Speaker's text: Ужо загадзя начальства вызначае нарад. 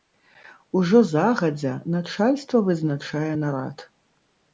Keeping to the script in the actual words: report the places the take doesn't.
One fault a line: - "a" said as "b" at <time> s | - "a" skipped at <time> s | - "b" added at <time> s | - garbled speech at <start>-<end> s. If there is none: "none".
none